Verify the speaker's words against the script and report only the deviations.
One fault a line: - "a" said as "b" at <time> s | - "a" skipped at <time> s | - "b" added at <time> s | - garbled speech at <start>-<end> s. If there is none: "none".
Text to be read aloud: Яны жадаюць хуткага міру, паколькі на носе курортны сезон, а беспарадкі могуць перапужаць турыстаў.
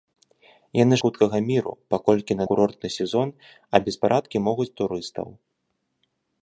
- "жадаюць" skipped at 0.9 s
- "носе" skipped at 2.5 s
- "перапужаць" skipped at 4.7 s